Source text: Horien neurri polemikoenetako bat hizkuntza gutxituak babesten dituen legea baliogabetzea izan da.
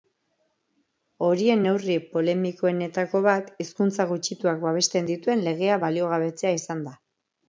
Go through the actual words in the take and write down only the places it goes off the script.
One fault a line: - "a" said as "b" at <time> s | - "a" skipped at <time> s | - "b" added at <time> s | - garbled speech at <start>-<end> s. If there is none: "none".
none